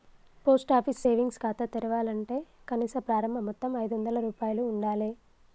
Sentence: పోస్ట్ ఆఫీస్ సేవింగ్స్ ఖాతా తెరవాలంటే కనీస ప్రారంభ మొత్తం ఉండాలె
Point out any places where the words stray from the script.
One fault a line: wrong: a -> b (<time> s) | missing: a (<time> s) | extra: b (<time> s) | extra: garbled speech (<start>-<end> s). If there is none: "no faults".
extra: ఐదొందల రూపాయలు (3.8 s)